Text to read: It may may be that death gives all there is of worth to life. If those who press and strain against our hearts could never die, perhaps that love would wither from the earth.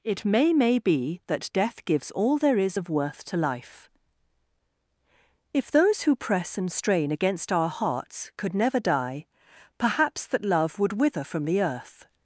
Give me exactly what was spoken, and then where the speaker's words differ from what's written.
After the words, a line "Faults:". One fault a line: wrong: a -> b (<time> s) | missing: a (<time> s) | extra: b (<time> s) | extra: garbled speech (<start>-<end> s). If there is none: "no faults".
It may may be that death gives all there is of worth to life. If those who press and strain against our hearts could never die, perhaps that love would wither from the earth.
Faults:
no faults